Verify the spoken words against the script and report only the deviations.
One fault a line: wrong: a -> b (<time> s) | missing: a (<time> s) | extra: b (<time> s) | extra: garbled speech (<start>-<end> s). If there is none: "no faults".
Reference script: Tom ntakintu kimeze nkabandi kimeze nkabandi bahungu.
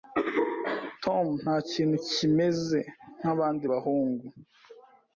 missing: kimeze nkabandi (3.6 s)